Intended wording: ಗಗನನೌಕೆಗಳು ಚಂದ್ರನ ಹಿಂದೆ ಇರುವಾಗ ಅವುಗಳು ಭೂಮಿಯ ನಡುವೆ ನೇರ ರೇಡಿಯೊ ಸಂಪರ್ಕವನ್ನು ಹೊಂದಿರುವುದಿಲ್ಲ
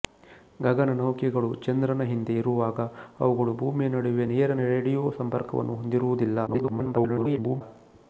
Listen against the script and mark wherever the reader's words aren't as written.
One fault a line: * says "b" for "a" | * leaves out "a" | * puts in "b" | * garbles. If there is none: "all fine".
* garbles